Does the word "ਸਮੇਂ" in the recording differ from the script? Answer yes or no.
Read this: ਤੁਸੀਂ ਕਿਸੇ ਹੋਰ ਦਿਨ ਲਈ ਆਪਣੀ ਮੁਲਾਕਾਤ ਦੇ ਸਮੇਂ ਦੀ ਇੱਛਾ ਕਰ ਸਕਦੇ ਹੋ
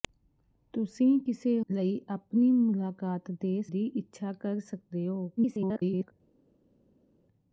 yes